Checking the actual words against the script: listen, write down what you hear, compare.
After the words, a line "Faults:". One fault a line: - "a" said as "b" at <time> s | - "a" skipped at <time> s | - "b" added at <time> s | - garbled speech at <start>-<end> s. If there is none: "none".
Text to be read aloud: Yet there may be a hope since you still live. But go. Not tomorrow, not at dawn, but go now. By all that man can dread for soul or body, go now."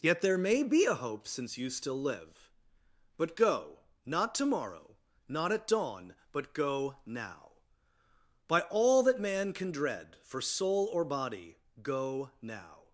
Yet there may be a hope since you still live. But go. Not tomorrow, not at dawn, but go now. By all that man can dread for soul or body, go now."
Faults:
none